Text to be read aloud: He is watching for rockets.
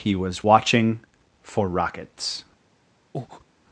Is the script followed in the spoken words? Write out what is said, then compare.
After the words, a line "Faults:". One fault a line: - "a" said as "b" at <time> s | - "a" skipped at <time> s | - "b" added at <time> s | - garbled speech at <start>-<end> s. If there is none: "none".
He was watching for rockets.
Faults:
- "is" said as "was" at 0.1 s